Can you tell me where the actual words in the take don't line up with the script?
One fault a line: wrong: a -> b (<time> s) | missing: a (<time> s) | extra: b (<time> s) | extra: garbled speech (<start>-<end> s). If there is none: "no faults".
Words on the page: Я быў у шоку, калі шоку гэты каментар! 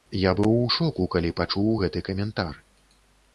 wrong: шоку -> пачуў (1.4 s)